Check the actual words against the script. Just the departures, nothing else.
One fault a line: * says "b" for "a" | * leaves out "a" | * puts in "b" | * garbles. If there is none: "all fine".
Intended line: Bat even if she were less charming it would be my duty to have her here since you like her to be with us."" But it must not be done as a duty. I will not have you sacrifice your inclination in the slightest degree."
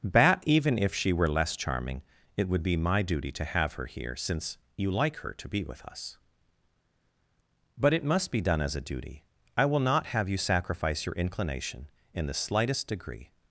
* leaves out "not"